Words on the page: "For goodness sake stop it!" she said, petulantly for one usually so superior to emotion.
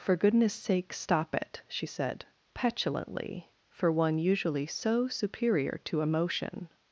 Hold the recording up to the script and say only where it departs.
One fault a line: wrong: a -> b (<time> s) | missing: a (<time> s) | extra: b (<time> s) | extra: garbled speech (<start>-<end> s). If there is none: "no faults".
no faults